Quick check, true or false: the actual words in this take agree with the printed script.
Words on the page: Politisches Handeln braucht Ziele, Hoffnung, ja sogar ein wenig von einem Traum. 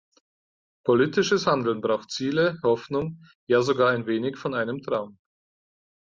true